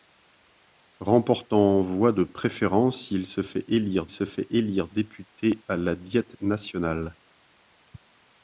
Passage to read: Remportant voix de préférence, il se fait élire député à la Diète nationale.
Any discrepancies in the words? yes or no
yes